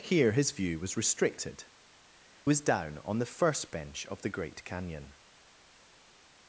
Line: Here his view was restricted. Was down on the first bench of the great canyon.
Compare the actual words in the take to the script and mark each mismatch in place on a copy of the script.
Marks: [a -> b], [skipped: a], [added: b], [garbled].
Here his view was restricted. Was down on the first bench of the great canyon.